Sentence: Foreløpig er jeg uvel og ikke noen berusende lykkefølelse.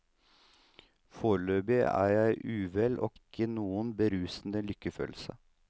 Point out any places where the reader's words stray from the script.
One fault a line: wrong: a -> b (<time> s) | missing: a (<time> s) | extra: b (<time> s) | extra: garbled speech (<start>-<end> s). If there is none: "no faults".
no faults